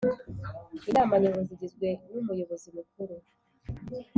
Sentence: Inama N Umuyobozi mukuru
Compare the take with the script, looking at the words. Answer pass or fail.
fail